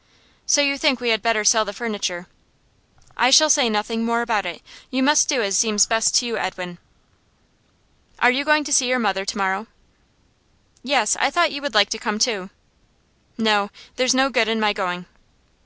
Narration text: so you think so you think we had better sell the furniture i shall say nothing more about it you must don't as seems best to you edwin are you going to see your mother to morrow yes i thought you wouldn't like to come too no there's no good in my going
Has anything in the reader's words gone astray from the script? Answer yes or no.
yes